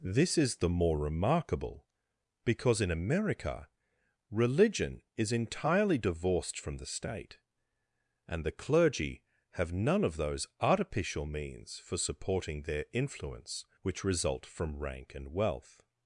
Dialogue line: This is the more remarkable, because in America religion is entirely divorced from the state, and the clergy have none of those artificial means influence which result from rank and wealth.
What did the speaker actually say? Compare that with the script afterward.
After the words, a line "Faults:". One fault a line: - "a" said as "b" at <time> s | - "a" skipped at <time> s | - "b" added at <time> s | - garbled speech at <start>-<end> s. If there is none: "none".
This is the more remarkable, because in America religion is entirely divorced from the state, and the clergy have none of those artificial means for supporting their influence which result from rank and wealth.
Faults:
- "for supporting their" added at 11.8 s